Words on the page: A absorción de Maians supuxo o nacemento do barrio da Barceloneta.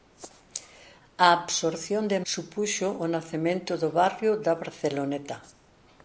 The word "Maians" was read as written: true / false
false